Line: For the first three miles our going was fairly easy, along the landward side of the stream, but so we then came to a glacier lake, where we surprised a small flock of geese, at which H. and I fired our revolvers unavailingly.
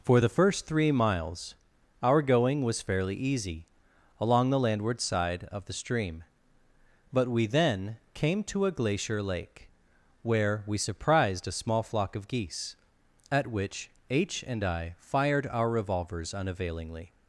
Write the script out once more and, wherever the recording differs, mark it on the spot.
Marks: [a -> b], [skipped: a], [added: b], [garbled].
For the first three miles our going was fairly easy, along the landward side of the stream, but [skipped: so] we then came to a glacier lake, where we surprised a small flock of geese, at which H. and I fired our revolvers unavailingly.